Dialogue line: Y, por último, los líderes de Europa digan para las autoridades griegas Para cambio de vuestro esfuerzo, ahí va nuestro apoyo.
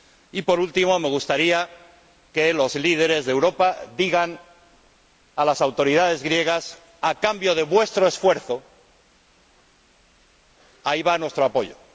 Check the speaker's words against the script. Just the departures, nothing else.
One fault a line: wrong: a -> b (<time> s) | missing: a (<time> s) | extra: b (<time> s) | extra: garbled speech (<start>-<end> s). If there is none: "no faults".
extra: me gustaría que (1.0 s)
wrong: para -> a (5.3 s)
wrong: Para -> A (7.0 s)